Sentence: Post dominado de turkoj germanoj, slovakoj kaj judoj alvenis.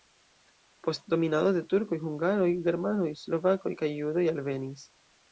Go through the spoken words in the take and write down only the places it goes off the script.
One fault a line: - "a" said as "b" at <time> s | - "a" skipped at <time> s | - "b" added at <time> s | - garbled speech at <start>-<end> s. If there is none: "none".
- "hungaroj" added at 2.0 s